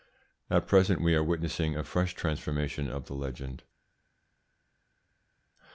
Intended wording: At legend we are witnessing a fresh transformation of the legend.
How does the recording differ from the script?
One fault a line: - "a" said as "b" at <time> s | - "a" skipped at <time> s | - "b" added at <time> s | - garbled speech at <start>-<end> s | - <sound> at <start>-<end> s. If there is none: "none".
- "legend" said as "present" at 0.7 s